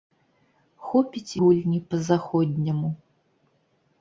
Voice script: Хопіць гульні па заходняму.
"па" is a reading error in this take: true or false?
false